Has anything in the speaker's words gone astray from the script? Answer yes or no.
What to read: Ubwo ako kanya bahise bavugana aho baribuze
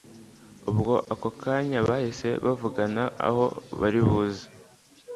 no